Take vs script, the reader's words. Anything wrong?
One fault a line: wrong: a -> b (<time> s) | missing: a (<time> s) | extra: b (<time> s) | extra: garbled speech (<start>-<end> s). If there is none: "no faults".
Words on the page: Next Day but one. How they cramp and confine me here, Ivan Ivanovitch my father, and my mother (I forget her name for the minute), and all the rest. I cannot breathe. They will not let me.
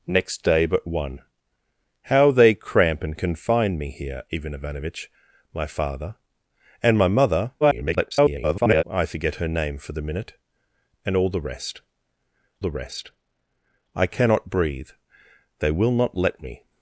extra: garbled speech (7.6-8.8 s)
extra: the rest (12.6 s)